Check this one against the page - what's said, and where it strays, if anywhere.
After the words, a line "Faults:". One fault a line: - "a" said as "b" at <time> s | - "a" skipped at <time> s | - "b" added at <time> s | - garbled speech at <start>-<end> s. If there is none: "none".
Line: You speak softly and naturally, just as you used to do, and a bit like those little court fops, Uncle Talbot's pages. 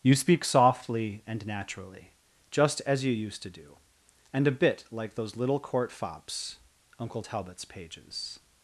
You speak softly and naturally, just as you used to do, and a bit like those little court fops, Uncle Talbot's pages.
Faults:
none